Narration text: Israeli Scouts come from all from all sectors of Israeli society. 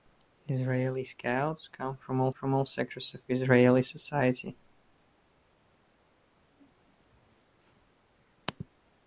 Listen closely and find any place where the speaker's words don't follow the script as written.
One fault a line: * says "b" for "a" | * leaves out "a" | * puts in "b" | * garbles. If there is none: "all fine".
all fine